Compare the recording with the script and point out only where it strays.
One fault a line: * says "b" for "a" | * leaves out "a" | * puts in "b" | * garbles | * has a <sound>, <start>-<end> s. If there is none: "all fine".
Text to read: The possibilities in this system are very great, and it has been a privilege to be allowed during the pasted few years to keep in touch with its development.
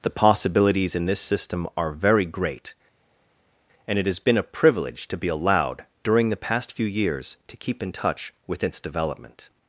* says "past" for "pasted"